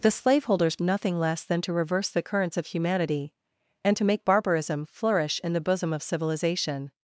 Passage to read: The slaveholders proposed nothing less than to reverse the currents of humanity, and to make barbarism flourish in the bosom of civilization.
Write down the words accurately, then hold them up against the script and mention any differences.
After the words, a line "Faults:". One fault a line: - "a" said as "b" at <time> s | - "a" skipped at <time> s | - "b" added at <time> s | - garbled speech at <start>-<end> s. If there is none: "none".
The slaveholders nothing less than to reverse the currents of humanity, and to make barbarism flourish in the bosom of civilization.
Faults:
- "proposed" skipped at 0.8 s